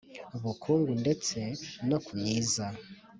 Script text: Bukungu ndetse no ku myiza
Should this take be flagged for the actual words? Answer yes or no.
no